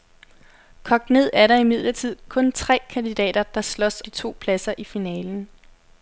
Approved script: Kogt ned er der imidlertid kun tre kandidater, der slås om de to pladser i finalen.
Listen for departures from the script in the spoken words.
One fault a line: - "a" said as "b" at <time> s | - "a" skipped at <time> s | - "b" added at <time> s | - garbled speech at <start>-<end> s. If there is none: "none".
- "om" skipped at 4.0 s